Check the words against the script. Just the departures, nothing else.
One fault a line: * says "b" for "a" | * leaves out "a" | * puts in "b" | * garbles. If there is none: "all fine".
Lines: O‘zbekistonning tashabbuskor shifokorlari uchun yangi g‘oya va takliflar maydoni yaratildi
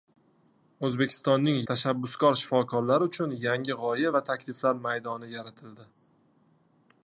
all fine